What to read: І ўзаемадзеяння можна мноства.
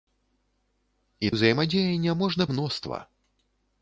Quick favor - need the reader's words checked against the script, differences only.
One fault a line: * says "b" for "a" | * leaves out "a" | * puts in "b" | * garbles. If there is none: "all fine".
all fine